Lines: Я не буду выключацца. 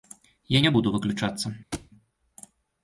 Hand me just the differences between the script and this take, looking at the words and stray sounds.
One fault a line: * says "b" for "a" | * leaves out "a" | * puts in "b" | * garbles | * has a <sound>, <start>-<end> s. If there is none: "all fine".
* has a thud, 1.7-1.9 s